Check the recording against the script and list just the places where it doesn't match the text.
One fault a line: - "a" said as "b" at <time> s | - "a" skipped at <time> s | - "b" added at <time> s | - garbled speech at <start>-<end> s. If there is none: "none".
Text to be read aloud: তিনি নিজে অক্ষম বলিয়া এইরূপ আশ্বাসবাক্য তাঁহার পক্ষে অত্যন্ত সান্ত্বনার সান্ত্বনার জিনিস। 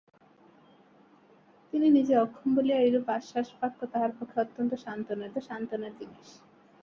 none